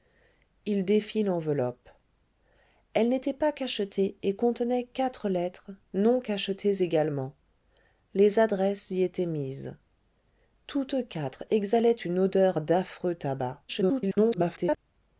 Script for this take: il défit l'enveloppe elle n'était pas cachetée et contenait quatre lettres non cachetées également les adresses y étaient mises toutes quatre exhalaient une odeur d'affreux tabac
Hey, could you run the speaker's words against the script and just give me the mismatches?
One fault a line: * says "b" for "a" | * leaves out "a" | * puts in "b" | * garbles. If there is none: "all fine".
* garbles